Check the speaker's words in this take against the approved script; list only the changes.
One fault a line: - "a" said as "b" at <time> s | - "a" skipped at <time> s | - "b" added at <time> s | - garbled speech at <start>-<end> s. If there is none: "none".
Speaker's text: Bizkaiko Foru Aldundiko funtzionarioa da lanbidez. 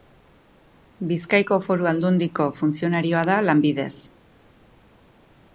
none